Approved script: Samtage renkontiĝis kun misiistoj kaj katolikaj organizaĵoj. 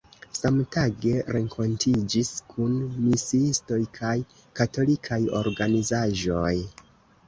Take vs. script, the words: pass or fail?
pass